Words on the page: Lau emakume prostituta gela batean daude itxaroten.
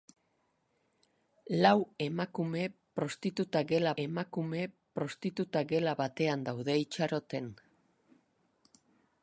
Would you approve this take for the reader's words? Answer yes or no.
no